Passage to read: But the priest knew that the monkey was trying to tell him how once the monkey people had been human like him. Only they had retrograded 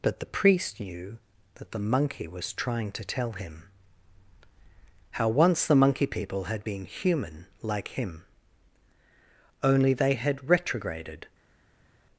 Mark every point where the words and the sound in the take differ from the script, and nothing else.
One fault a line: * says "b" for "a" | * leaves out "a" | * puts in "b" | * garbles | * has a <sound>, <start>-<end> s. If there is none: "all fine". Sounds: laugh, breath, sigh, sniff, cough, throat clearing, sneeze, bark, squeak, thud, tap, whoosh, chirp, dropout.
all fine